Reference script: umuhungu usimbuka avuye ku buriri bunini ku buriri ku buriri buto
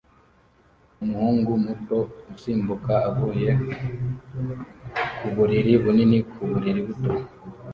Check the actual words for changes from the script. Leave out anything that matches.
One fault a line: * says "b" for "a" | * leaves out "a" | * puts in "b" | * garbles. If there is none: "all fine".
* puts in "muto"
* leaves out "ku buriri"